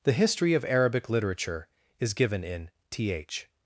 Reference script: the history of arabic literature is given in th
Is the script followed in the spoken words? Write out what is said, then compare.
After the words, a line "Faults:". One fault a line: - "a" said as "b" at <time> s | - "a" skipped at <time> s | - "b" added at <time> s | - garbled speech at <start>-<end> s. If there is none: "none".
the history of arabic literature is given in th
Faults:
none